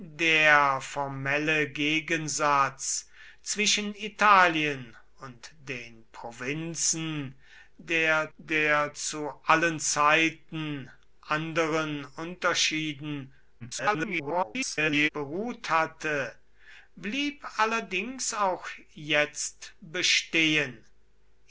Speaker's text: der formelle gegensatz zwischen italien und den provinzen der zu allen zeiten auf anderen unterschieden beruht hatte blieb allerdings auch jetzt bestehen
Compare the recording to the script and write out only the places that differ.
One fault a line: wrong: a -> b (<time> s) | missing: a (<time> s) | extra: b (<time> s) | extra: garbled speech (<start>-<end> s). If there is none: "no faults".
extra: der (8.4 s)
missing: auf (10.9 s)
extra: garbled speech (13.6-15.1 s)